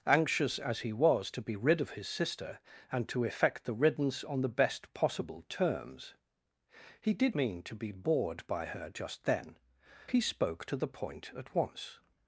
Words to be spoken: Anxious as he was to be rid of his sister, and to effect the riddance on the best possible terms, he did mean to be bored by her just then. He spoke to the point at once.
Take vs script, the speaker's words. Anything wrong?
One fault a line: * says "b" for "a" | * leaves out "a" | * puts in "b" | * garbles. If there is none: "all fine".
all fine